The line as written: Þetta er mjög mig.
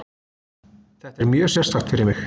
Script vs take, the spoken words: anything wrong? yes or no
yes